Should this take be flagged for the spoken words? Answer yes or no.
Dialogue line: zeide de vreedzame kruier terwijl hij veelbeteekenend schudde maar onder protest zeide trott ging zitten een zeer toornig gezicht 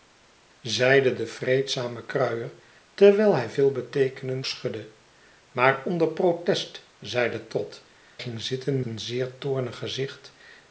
no